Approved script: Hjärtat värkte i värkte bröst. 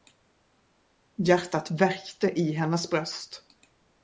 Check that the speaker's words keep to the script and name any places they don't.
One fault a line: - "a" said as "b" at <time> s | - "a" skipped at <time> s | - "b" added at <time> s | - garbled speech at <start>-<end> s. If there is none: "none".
- "värkte" said as "hennes" at 2.5 s